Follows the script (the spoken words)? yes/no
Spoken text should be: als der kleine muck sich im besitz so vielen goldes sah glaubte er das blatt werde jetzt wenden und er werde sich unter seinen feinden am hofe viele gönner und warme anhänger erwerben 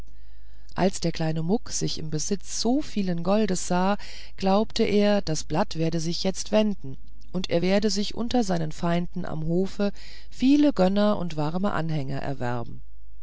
no